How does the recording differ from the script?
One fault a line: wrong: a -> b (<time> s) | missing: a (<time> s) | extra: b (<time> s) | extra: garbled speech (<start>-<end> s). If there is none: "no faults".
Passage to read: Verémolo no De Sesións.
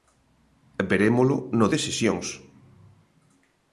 no faults